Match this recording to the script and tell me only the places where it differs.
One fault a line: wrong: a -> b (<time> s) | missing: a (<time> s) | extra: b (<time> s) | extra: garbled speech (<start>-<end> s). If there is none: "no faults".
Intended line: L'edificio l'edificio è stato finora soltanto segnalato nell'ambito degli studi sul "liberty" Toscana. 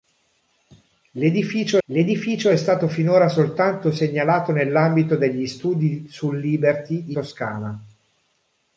no faults